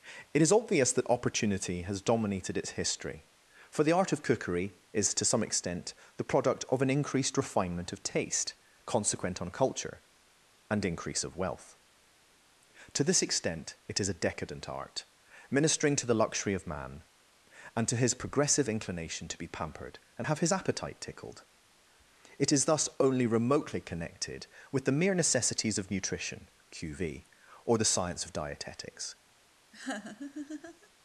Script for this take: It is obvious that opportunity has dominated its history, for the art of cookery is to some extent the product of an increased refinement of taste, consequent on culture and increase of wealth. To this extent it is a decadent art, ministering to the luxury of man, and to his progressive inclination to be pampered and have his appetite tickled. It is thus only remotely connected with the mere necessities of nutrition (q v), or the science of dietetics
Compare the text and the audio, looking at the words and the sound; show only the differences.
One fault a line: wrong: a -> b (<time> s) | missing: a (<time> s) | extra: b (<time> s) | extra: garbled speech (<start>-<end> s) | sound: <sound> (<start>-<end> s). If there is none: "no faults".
sound: laugh (29.7-30.9 s)